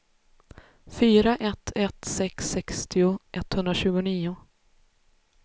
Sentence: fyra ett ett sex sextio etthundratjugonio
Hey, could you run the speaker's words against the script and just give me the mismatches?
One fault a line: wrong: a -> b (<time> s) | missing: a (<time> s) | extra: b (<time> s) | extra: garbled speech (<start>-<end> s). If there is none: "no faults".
no faults